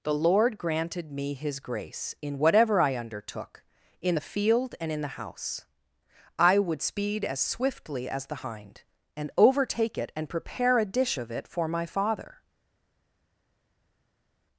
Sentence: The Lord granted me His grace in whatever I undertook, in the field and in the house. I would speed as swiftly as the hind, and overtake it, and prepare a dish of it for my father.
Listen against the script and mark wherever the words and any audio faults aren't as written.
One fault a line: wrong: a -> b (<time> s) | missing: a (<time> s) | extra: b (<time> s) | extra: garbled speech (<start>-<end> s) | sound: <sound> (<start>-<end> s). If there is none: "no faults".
no faults